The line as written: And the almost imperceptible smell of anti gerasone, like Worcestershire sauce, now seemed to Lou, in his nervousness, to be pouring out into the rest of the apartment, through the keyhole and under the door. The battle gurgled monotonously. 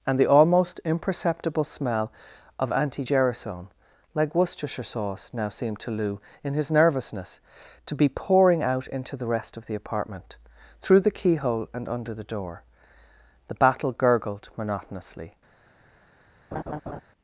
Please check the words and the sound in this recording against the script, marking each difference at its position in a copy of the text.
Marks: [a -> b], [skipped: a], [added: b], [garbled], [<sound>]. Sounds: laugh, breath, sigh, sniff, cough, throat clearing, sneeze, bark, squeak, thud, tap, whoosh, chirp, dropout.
And the almost imperceptible smell of anti gerasone, like Worcestershire sauce, now seemed to Lou, in his nervousness, to be pouring out into the rest of the apartment, through the keyhole and under the door. The battle gurgled monotonously. [laugh]